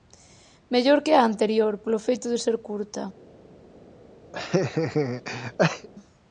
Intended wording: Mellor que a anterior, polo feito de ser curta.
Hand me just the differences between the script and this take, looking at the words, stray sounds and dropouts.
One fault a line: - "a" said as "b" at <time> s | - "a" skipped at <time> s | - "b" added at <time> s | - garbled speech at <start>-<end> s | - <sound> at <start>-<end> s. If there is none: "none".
- laugh at 4.3-5.9 s